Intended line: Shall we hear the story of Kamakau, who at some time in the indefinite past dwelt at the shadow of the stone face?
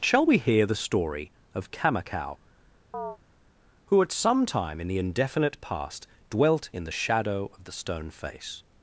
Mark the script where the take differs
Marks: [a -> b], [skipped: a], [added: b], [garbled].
Shall we hear the story of Kamakau, who at some time in the indefinite past dwelt [at -> in] the shadow of the stone face?